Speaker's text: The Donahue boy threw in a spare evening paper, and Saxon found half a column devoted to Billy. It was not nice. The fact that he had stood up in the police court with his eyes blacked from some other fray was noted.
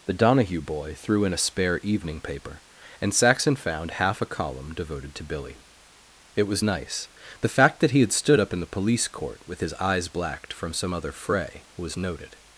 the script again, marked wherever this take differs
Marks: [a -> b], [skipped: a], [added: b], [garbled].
The Donahue boy threw in a spare evening paper, and Saxon found half a column devoted to Billy. It was [skipped: not] nice. The fact that he had stood up in the police court with his eyes blacked from some other fray was noted.